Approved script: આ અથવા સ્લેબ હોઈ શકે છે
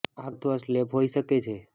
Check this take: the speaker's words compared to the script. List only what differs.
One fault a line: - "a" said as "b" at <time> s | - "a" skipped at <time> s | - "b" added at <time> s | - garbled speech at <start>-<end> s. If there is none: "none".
none